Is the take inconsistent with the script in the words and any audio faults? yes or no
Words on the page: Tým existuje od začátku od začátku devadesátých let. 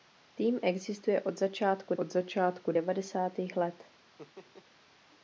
yes